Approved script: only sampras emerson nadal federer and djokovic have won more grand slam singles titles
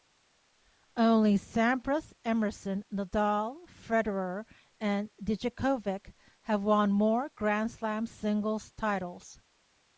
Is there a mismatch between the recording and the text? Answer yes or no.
no